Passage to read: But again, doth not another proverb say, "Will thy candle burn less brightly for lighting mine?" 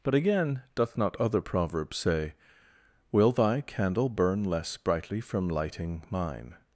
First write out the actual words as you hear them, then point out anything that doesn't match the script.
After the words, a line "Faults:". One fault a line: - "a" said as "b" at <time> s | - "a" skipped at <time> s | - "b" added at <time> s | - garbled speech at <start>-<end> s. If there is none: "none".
But again, doth not other proverb say, "Will thy candle burn less brightly from lighting mine?"
Faults:
- "another" said as "other" at 1.2 s
- "for" said as "from" at 5.2 s